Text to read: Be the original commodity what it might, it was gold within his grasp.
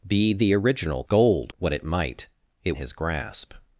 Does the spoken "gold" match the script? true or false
false